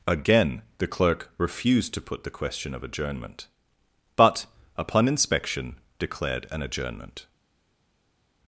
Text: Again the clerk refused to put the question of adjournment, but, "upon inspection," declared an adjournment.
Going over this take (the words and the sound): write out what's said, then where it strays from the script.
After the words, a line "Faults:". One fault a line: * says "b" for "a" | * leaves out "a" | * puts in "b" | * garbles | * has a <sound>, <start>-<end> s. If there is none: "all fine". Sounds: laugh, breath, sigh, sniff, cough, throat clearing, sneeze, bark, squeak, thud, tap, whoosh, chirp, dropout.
Again the clerk refused to put the question of adjournment, but, "upon inspection," declared an adjournment.
Faults:
all fine